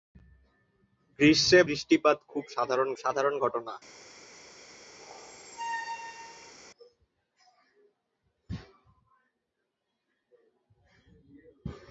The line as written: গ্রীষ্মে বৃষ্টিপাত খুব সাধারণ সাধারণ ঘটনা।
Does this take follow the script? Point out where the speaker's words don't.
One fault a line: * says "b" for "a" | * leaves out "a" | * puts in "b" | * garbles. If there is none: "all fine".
all fine